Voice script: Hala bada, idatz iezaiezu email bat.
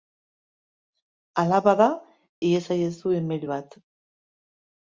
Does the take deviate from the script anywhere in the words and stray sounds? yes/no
yes